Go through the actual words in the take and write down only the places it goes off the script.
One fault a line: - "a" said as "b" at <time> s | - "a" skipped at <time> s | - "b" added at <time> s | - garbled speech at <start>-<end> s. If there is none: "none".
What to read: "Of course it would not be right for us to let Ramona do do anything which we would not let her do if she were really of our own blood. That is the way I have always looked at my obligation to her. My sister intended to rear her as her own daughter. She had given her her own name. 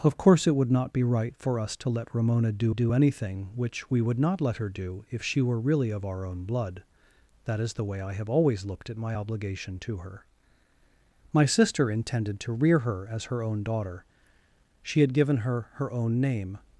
none